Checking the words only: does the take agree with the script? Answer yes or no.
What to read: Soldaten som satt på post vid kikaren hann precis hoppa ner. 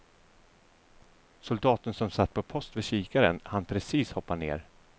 yes